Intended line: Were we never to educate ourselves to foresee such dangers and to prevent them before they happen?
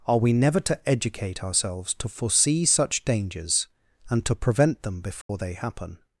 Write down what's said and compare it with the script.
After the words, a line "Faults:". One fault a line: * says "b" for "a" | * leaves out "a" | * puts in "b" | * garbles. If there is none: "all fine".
Are we never to educate ourselves to foresee such dangers and to prevent them before they happen?
Faults:
* says "Are" for "Were"